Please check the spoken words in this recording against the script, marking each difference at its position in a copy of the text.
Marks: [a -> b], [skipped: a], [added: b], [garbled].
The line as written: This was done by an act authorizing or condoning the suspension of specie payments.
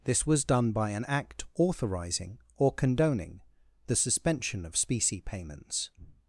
This was done by an act authorizing or condoning the suspension of specie payments.